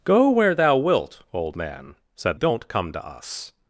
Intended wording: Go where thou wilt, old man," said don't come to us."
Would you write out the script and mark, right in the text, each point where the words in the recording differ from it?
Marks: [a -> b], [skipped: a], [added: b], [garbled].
Go where thou wilt, old man," said don't come to us."